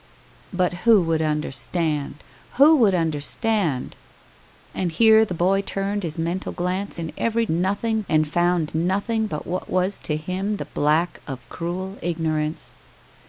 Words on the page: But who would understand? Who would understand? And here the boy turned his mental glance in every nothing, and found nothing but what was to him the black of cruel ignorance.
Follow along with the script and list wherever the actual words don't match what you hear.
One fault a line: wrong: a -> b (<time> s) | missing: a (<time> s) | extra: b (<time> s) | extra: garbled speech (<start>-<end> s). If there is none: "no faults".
no faults